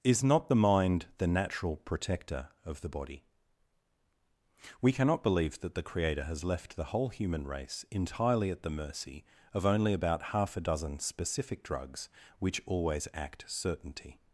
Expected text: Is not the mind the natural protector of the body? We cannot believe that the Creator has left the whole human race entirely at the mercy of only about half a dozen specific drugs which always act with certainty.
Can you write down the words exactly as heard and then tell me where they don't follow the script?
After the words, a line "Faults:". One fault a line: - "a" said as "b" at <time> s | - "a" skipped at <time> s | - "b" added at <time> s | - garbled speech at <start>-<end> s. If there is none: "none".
Is not the mind the natural protector of the body? We cannot believe that the Creator has left the whole human race entirely at the mercy of only about half a dozen specific drugs which always act certainty.
Faults:
- "with" skipped at 13.4 s